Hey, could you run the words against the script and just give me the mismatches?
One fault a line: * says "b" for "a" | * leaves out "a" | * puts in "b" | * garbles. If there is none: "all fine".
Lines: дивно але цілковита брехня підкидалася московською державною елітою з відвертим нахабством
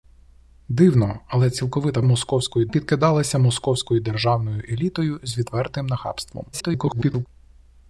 * says "московською" for "брехня"
* garbles